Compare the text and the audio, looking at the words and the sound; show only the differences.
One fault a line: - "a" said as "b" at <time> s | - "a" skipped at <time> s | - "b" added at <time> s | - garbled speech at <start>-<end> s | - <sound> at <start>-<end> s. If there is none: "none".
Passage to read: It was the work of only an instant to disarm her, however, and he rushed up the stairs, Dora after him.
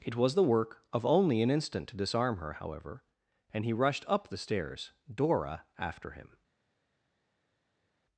none